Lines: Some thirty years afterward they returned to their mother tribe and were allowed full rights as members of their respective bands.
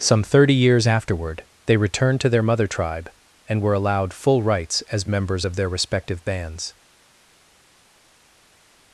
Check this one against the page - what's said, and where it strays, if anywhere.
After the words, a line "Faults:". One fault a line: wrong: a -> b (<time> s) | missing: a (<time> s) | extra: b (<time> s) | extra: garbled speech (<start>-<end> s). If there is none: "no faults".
Some thirty years afterward they returned to their mother tribe and were allowed full rights as members of their respective bands.
Faults:
no faults